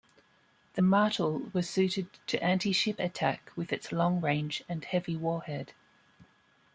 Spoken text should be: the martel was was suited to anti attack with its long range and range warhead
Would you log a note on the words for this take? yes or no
yes